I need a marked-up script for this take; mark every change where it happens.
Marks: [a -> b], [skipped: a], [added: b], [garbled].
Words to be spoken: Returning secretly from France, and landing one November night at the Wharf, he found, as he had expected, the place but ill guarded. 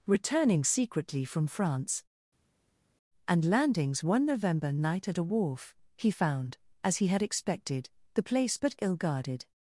Returning secretly from France, and [landing -> landings] one November night at [the -> a] Wharf, he found, as he had expected, the place but ill guarded.